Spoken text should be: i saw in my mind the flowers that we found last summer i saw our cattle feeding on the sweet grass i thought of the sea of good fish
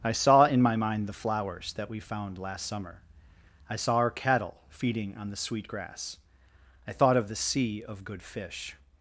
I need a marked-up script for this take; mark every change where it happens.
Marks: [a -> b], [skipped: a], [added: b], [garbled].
i saw in my mind the flowers that we found last summer i saw our cattle feeding on the sweet grass i thought of the sea of good fish